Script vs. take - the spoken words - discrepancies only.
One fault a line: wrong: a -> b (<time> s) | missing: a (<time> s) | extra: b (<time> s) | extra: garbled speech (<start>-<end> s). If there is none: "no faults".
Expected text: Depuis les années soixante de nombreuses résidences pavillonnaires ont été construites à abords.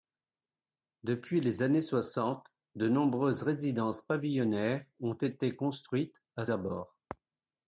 no faults